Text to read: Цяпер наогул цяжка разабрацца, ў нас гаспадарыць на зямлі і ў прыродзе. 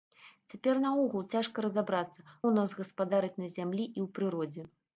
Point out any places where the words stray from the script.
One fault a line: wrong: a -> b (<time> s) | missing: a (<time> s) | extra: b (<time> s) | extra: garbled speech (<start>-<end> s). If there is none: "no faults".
no faults